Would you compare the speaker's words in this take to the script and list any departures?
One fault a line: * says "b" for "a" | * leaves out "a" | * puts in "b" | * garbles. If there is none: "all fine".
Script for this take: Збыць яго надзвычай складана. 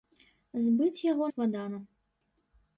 * leaves out "надзвычай"